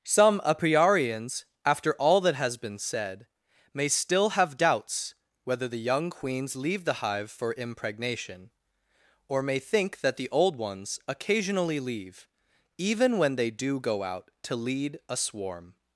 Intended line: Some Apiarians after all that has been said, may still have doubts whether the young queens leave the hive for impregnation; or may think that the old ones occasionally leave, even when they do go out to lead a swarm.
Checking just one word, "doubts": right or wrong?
right